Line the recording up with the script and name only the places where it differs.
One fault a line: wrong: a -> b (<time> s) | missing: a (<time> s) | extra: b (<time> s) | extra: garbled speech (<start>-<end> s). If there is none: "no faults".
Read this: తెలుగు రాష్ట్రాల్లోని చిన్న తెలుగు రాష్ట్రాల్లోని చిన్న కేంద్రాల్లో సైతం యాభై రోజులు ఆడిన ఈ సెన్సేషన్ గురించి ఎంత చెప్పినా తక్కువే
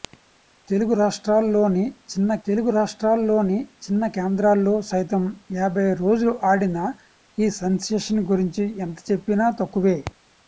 no faults